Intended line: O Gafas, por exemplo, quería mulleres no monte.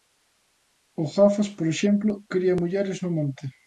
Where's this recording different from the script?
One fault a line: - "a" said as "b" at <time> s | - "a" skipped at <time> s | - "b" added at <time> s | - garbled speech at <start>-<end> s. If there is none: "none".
none